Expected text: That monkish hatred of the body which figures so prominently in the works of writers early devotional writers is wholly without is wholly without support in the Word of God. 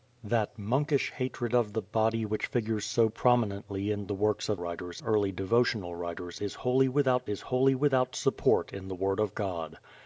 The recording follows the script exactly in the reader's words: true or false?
true